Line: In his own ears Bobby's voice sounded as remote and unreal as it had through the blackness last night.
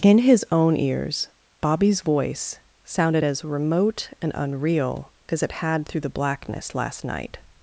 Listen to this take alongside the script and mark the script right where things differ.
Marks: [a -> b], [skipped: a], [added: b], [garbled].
In his own ears Bobby's voice sounded as remote and unreal as it had through the blackness last night.